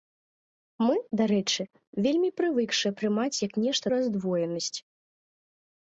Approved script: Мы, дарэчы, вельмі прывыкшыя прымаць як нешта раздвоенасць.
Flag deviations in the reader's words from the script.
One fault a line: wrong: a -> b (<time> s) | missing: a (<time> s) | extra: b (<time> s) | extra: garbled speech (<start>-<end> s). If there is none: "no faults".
no faults